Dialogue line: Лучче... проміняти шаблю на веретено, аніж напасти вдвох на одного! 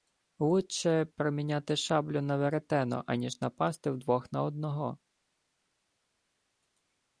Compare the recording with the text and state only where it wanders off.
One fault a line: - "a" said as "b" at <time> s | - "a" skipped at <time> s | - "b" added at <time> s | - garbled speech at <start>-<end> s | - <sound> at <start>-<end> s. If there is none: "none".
none